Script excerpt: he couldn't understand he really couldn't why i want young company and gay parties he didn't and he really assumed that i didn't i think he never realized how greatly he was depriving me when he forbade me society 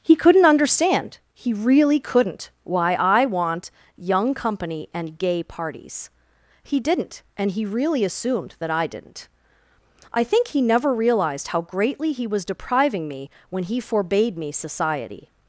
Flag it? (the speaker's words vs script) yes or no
no